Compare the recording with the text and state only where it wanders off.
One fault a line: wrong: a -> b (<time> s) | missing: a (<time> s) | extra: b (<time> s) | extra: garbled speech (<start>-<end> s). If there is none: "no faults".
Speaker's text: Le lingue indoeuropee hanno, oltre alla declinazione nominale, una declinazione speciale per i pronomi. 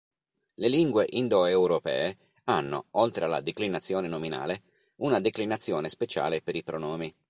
no faults